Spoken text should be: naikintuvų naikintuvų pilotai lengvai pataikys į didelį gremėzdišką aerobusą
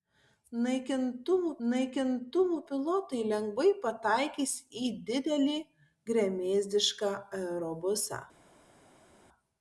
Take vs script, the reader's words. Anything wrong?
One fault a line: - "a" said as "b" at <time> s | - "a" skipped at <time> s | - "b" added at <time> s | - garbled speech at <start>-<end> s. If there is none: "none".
none